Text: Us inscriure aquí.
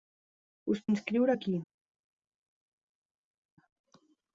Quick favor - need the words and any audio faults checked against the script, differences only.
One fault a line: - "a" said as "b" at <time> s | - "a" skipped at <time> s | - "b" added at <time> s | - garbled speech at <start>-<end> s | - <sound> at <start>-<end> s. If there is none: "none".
none